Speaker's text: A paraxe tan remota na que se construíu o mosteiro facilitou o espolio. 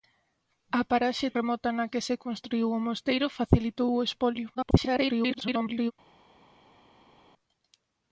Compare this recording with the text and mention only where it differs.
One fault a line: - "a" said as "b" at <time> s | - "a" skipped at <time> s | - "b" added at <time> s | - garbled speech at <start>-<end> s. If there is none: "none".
- "tan" skipped at 1.3 s
- garbled speech at 4.5-5.9 s